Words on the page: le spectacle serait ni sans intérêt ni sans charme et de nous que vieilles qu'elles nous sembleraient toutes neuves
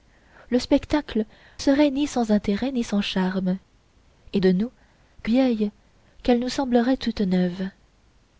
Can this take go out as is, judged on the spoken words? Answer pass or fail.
pass